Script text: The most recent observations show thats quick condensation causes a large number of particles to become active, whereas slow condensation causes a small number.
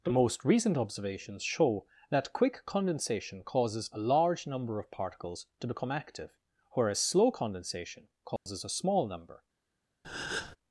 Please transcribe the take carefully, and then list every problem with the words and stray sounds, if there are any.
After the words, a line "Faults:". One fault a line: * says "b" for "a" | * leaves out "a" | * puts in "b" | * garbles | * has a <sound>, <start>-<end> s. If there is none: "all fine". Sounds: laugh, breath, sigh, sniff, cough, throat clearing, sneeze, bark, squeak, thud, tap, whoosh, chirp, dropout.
The most recent observations show that quick condensation causes a large number of particles to become active, whereas slow condensation causes a small number.
Faults:
* says "that" for "thats"
* has a dropout, 8.4-8.5 s
* has a breath, 10.0-10.6 s